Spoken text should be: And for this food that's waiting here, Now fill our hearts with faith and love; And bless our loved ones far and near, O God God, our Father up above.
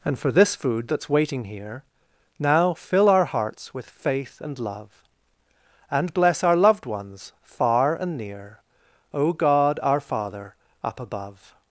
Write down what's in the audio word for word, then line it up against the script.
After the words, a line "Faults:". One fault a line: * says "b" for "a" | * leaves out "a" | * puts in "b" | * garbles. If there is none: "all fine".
And for this food that's waiting here, Now fill our hearts with faith and love; And bless our loved ones far and near, O God, our Father up above.
Faults:
* leaves out "God"